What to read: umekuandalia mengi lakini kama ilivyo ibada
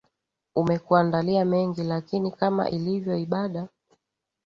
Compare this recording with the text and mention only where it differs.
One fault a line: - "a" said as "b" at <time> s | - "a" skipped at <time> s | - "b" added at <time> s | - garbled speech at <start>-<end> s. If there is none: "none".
none